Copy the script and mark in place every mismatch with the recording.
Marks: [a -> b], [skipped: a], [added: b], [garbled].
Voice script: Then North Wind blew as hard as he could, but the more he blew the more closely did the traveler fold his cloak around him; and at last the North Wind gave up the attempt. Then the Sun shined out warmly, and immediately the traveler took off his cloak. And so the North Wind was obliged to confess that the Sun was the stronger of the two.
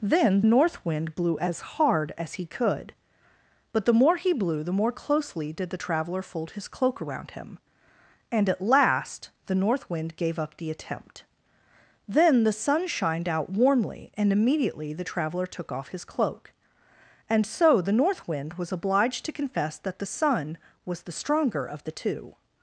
Then North Wind blew as hard as he could, but the more he blew the more closely did the traveler fold his cloak around him; and at last the North Wind gave up the attempt. Then the Sun shined out warmly, and immediately the traveler took off his cloak. And so the North Wind was obliged to confess that the Sun was the stronger of the two.